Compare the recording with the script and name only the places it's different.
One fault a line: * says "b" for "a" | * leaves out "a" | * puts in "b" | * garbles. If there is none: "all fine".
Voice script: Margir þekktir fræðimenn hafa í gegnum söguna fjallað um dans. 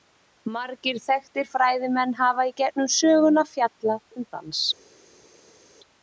all fine